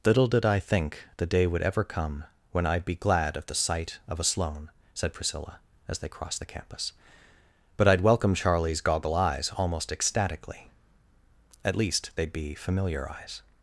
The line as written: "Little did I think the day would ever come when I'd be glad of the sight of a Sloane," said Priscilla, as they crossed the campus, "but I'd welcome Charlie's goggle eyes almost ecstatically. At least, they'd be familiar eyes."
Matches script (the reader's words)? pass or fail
pass